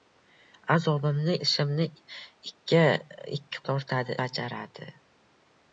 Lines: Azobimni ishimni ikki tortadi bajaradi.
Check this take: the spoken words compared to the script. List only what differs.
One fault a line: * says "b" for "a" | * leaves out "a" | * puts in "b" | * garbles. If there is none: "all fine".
all fine